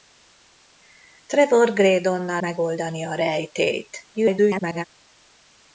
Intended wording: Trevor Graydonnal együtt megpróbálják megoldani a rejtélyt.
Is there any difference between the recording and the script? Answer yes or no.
yes